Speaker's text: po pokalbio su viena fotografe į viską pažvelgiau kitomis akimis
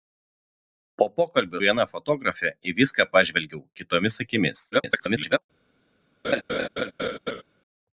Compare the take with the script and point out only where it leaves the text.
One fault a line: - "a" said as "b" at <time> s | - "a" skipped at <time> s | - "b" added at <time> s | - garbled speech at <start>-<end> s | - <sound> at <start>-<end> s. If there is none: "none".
- "su" skipped at 1.6 s
- garbled speech at 4.7-5.4 s
- laugh at 6.2-7.4 s